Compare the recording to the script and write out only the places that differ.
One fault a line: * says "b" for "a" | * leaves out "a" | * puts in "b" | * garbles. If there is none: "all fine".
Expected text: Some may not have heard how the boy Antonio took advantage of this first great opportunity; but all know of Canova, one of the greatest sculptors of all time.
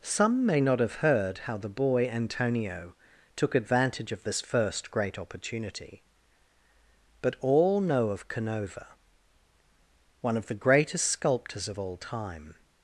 all fine